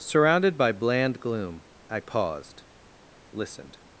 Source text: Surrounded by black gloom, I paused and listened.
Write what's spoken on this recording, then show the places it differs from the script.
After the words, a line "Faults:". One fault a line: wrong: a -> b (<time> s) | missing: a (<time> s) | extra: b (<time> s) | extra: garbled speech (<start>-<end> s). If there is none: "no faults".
Surrounded by bland gloom, I paused listened.
Faults:
wrong: black -> bland (0.7 s)
missing: and (2.6 s)